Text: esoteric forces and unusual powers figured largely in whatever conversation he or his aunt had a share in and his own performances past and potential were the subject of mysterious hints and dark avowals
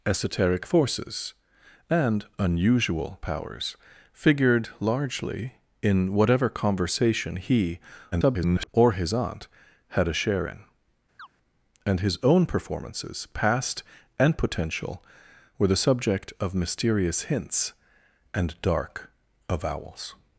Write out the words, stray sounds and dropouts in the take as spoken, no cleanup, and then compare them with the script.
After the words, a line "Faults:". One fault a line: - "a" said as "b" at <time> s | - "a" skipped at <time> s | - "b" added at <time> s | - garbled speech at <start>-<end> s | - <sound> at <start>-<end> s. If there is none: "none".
esoteric forces and unusual powers figured largely in whatever conversation he [garbled] or his aunt had a share in and his own performances past and potential were the subject of mysterious hints and dark avowals
Faults:
- garbled speech at 8.1-8.7 s
- chirp at 11.2-11.3 s